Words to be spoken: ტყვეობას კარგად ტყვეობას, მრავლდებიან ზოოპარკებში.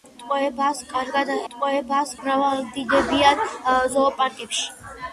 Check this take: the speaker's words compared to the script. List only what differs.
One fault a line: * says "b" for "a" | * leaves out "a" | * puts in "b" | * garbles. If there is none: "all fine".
all fine